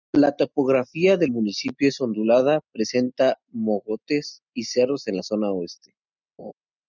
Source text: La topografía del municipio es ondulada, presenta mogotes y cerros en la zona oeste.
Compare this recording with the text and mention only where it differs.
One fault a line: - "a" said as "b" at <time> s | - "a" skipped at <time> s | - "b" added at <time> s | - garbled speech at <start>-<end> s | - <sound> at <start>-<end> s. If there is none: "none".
- laugh at 6.4-6.5 s